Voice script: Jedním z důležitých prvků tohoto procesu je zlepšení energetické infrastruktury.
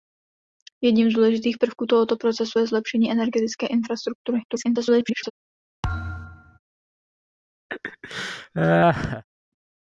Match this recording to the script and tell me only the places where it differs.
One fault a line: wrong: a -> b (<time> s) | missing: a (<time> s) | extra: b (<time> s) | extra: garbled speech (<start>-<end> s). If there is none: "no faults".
extra: garbled speech (4.5-5.3 s)